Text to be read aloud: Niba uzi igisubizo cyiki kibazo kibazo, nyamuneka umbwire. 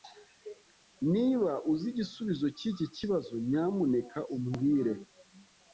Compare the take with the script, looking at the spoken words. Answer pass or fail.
fail